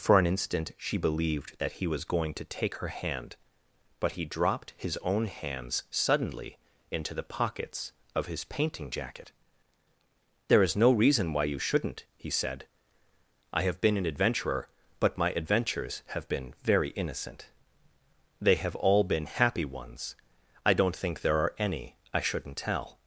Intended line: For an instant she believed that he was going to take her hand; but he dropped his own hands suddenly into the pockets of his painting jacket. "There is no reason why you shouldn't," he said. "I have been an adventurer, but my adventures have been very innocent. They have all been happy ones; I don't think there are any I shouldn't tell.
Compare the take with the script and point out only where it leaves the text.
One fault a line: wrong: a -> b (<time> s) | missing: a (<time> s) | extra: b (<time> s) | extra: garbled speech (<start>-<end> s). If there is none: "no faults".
no faults